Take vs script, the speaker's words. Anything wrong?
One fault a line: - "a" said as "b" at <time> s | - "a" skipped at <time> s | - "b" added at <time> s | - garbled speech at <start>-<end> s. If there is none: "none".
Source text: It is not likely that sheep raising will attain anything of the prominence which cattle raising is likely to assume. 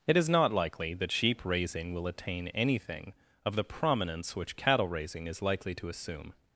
none